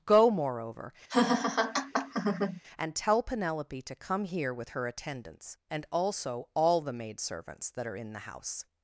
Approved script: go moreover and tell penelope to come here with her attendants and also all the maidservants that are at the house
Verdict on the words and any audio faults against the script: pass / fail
fail